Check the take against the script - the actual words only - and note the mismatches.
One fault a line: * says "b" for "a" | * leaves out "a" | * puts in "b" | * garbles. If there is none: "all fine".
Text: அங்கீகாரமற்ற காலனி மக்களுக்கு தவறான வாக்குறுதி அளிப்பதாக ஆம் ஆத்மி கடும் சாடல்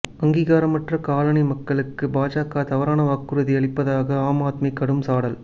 * puts in "பாஜக"